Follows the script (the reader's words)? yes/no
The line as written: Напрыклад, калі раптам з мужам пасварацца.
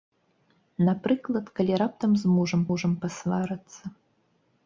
no